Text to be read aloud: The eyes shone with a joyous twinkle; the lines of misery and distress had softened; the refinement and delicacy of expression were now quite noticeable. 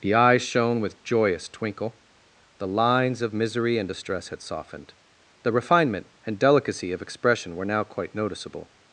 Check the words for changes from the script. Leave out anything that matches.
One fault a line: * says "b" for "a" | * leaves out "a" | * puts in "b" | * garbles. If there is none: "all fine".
* leaves out "a"